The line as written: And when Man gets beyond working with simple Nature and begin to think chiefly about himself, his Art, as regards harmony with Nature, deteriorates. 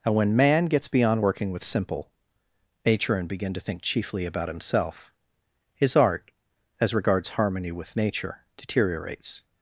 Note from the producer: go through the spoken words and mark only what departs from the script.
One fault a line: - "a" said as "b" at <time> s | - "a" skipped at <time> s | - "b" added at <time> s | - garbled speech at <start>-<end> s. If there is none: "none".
none